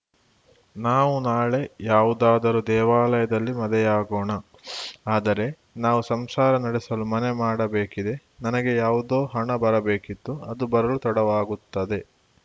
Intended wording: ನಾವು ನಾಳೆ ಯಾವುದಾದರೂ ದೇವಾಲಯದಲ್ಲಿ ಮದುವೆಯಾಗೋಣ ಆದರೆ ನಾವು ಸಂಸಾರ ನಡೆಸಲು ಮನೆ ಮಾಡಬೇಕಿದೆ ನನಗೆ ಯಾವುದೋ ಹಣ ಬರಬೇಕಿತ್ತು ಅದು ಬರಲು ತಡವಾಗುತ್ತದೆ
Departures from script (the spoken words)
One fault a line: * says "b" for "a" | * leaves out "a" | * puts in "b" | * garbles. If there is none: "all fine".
all fine